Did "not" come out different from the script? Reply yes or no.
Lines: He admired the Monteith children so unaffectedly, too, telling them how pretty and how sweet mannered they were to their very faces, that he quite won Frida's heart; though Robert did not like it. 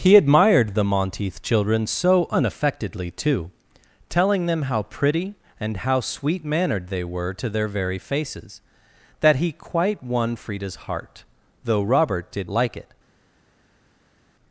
yes